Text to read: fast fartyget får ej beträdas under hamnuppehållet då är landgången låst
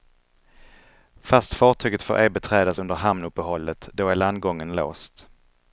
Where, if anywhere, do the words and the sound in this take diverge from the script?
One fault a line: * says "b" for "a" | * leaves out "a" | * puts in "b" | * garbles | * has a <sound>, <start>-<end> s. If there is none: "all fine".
all fine